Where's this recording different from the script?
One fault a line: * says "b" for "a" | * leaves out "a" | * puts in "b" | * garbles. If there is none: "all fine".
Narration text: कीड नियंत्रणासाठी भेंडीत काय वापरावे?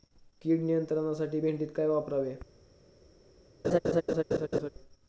all fine